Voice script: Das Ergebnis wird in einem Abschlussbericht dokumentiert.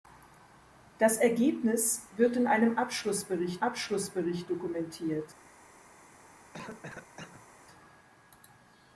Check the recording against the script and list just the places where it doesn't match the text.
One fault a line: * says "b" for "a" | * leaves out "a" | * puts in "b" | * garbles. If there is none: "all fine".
* puts in "Abschlussbericht"